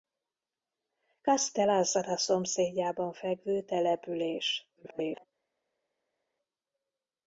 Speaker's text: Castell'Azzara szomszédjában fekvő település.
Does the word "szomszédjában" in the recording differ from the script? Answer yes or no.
no